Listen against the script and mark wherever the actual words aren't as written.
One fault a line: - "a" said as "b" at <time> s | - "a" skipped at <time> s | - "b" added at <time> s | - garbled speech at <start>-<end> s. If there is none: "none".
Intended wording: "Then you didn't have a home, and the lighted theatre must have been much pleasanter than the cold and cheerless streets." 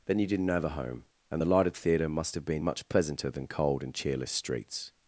- "the" skipped at 3.5 s